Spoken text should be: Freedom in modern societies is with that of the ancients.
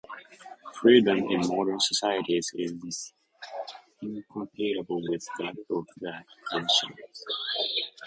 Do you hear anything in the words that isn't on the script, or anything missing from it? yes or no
yes